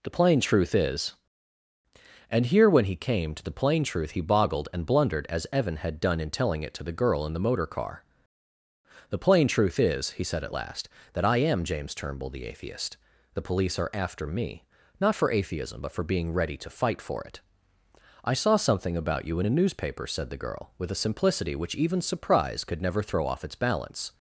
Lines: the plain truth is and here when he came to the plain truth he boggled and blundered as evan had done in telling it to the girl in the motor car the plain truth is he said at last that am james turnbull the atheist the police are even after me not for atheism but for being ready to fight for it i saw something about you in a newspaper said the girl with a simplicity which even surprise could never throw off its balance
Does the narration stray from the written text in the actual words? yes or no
yes